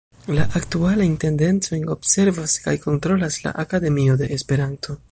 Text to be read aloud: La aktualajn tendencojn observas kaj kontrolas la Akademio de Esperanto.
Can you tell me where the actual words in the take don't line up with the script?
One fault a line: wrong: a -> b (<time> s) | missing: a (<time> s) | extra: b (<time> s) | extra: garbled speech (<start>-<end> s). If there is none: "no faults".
no faults